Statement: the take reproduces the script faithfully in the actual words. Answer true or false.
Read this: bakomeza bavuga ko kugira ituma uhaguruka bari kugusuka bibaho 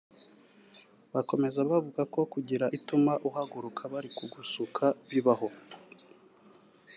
true